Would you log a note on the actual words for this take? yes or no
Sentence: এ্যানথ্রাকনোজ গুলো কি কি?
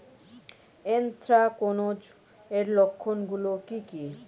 yes